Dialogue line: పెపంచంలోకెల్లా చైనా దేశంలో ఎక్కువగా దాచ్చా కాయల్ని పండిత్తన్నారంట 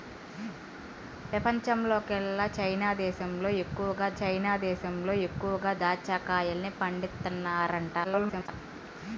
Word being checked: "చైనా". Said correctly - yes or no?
yes